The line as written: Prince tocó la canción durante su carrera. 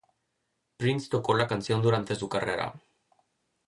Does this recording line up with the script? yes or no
yes